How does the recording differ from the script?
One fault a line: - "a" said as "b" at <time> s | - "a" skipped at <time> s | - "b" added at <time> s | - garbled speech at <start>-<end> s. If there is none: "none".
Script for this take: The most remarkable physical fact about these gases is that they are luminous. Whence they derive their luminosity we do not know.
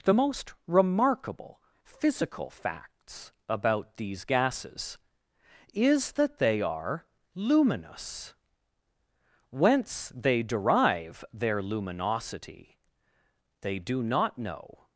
- "fact" said as "facts" at 2.5 s
- "we" said as "they" at 13.6 s